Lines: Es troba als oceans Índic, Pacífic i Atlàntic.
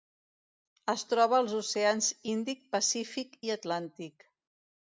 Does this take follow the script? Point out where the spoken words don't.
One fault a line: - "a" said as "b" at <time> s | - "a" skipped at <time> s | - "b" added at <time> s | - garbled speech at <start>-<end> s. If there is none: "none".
none